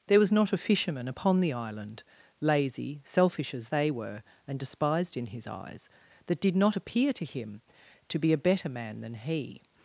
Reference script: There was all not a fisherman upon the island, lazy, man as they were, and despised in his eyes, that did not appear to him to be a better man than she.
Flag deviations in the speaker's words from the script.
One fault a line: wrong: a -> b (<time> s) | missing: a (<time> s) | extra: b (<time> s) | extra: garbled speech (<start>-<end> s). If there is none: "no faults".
missing: all (0.3 s)
wrong: man -> selfish (3.0 s)
wrong: she -> he (9.1 s)